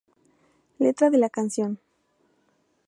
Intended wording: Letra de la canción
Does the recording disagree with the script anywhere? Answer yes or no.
no